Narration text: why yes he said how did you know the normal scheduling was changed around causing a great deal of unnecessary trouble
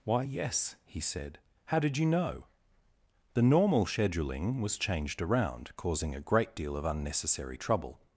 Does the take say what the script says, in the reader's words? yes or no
yes